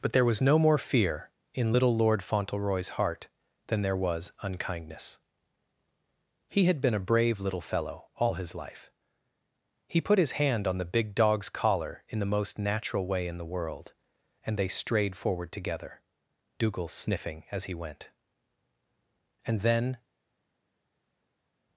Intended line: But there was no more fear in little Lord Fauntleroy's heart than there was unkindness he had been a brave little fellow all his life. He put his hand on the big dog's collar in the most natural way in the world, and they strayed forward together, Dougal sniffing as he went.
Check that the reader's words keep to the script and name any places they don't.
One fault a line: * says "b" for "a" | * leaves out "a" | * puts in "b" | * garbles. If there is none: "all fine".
* puts in "And then"